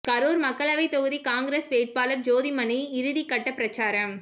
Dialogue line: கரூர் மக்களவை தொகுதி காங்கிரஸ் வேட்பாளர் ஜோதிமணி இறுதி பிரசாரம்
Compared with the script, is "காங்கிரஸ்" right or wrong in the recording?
right